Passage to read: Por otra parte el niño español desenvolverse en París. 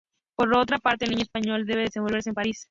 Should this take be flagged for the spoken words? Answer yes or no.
yes